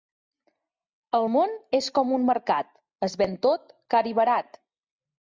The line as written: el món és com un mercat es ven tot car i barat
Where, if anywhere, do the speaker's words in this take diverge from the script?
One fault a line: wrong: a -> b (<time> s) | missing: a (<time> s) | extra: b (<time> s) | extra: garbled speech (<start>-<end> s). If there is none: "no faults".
no faults